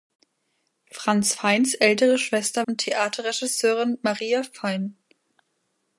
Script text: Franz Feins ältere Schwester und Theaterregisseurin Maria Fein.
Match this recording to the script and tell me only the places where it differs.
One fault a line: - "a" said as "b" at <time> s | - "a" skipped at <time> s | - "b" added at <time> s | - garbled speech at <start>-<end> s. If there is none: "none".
none